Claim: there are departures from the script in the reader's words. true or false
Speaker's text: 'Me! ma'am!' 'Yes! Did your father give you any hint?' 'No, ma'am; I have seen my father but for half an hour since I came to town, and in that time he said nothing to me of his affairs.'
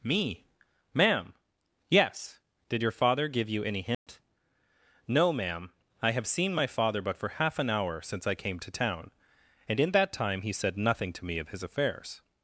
false